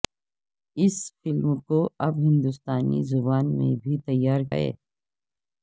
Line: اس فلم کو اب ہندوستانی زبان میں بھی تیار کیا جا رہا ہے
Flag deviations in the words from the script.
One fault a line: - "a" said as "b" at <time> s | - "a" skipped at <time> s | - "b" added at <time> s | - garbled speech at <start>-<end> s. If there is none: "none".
- "کیا جا رہا" skipped at 4.4 s